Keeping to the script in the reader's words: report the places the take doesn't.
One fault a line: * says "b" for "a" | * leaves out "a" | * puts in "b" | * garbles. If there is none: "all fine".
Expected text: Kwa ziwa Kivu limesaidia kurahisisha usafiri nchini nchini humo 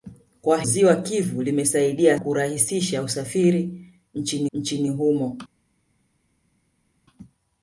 all fine